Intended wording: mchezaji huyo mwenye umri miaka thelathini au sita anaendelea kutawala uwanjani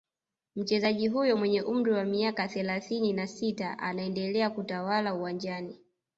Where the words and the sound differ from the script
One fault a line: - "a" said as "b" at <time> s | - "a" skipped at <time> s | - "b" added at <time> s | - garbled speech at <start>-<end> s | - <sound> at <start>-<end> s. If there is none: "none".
- "wa" added at 1.9 s
- "au" said as "na" at 3.1 s